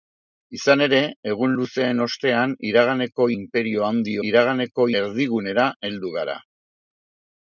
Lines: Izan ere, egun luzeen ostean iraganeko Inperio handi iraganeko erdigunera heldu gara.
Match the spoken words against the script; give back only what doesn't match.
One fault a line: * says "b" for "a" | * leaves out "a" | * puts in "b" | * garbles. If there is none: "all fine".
all fine